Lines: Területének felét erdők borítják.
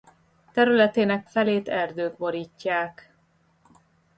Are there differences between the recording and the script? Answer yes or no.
no